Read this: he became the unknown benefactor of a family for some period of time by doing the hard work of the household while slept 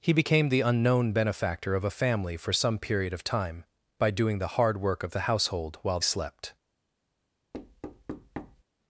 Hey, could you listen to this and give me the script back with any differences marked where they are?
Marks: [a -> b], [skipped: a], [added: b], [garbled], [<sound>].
he became the unknown benefactor of a family for some period of time by doing the hard work of the household while slept [thud]